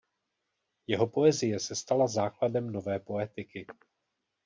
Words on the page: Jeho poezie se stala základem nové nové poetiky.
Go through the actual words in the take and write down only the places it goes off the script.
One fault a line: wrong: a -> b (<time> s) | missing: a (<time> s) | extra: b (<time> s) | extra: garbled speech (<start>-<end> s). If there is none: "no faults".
missing: nové (3.0 s)